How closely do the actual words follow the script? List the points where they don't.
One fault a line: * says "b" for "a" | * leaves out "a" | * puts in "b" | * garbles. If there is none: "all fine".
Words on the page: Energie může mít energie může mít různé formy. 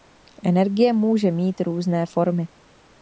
* leaves out "energie může mít"